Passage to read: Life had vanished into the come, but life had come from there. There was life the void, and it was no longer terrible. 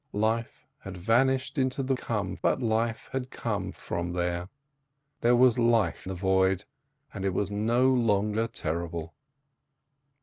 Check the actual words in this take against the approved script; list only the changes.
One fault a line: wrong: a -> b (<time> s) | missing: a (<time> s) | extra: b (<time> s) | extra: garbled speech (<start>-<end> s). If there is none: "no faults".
no faults